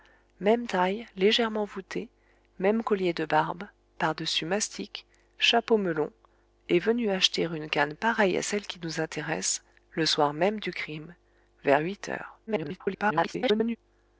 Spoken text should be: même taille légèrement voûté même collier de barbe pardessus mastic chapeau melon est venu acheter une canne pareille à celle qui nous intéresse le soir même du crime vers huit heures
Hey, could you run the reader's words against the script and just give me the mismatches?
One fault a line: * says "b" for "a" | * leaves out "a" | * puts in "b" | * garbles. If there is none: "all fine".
* garbles